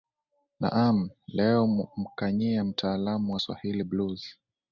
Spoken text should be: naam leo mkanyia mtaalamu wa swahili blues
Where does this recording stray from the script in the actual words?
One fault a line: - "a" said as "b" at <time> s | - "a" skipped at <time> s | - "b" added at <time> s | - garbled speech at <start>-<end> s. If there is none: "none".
none